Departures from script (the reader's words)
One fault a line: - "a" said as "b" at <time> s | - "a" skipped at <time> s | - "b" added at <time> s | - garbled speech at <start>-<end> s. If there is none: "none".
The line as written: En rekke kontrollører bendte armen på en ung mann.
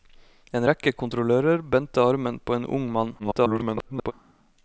- garbled speech at 3.2-4.1 s